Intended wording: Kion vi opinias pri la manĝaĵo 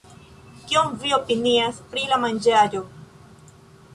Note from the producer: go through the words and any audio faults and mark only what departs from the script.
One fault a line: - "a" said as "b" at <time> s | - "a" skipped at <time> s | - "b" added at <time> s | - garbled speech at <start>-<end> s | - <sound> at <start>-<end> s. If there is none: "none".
none